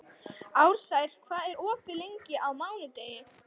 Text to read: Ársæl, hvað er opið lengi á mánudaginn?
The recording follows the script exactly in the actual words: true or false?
true